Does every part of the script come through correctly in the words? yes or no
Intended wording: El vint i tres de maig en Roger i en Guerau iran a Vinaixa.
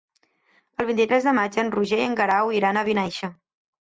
yes